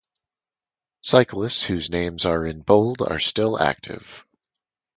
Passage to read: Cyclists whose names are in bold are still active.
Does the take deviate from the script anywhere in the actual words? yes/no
no